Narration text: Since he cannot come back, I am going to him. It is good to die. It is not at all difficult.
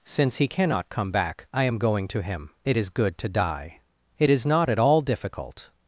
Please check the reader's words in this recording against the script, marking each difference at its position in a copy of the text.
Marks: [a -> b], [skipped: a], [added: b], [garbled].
Since he cannot come back, I am going to him. It is good to die. It is not at all difficult.